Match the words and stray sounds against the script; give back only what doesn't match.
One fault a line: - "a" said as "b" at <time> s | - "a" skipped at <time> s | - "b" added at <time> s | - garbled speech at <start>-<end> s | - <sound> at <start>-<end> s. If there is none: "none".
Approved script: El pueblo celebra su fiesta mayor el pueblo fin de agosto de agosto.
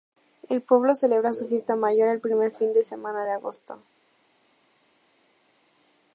- "pueblo" said as "primer" at 2.2 s
- "agosto" said as "semana" at 2.8 s